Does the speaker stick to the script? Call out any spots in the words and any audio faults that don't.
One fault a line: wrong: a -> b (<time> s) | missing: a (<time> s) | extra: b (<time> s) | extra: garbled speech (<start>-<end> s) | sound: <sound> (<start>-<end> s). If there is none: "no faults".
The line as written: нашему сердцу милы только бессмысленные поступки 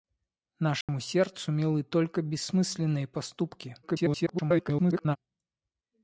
sound: dropout (0.8-0.9 s)
extra: garbled speech (3.8-5.2 s)